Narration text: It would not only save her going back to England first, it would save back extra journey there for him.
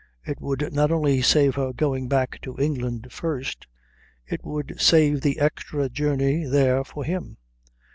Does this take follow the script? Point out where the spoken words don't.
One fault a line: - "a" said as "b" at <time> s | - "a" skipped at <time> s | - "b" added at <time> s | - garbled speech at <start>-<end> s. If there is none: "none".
- "back" said as "the" at 5.2 s